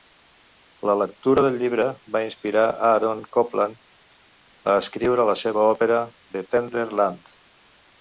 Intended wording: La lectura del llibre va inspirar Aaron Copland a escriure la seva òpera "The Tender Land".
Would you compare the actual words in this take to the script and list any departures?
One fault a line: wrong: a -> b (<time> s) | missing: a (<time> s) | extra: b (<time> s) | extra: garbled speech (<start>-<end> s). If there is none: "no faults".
no faults